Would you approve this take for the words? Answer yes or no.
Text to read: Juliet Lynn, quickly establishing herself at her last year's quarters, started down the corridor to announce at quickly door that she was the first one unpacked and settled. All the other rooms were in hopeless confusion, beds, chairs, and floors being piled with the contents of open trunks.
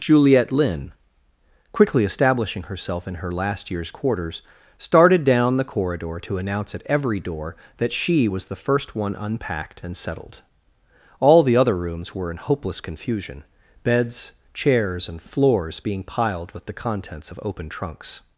no